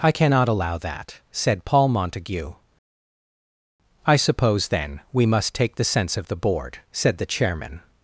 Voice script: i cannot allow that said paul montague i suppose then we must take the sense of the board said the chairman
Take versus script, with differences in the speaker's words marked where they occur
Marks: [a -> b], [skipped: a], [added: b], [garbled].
i cannot allow that said paul montague i suppose then we must take the sense of the board said the chairman